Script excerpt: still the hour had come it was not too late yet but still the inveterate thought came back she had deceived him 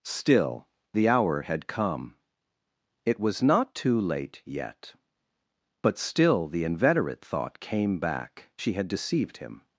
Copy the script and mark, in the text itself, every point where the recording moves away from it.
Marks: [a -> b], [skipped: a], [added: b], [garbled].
still the hour had come it was not too late yet but still the inveterate thought came back she had deceived him